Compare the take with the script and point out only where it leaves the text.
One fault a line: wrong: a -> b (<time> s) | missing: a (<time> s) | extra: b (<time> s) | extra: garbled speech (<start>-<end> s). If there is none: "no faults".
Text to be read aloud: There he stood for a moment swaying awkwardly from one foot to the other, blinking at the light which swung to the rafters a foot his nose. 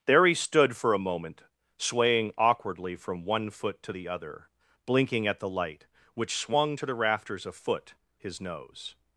no faults